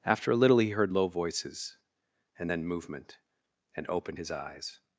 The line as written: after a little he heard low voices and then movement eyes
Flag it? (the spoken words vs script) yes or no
yes